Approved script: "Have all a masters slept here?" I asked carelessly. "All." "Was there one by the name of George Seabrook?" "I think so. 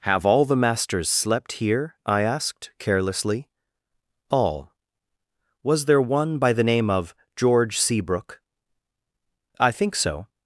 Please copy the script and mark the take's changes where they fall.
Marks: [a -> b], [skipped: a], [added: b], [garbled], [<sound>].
"Have all [a -> the] masters slept here?" I asked carelessly. "All." "Was there one by the name of George Seabrook?" "I think so.